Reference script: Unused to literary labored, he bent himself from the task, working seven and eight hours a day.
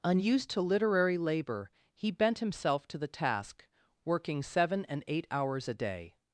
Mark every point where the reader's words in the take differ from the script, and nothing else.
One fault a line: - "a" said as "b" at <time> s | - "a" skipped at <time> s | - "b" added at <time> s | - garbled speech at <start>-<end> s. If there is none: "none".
- "labored" said as "labor" at 1.2 s
- "from" said as "to" at 2.9 s